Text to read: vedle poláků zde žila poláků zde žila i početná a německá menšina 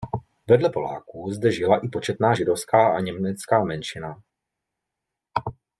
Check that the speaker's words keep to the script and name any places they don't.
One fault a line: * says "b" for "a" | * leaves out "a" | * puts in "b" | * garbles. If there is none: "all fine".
* leaves out "poláků zde žila"
* puts in "židovská"